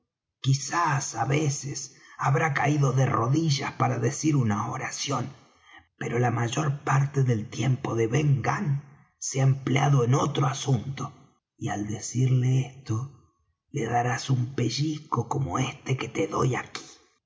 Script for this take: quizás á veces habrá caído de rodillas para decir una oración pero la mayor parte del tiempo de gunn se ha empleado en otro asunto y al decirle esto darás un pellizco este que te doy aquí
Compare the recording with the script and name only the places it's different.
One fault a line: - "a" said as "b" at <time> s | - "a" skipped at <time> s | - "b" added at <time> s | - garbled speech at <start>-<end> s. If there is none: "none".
- "ben" added at 8.1 s
- "le" added at 13.7 s
- "como" added at 15.3 s